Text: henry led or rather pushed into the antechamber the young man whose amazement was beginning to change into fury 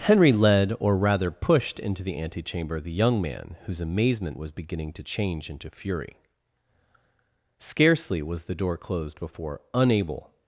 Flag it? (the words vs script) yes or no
yes